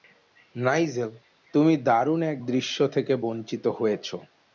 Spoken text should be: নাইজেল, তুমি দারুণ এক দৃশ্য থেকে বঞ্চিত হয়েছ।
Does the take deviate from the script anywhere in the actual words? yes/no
no